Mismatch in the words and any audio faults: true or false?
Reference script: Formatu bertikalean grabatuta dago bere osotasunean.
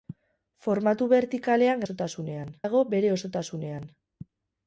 true